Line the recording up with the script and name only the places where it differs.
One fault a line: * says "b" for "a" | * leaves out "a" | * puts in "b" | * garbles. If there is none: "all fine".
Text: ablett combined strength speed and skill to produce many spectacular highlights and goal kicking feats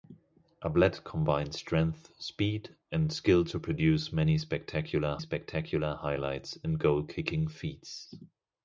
* puts in "spectacular"